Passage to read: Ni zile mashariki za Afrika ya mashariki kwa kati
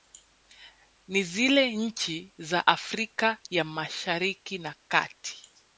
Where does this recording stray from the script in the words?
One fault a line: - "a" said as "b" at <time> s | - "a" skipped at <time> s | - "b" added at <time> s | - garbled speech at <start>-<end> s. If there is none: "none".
- "mashariki" said as "nchi" at 1.8 s
- "kwa" said as "na" at 4.6 s